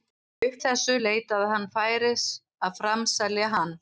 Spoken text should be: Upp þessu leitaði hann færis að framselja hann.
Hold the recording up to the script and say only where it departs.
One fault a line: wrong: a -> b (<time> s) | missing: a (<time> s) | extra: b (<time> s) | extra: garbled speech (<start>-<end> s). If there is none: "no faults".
no faults